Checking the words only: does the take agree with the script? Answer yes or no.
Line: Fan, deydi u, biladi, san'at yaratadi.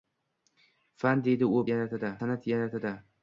no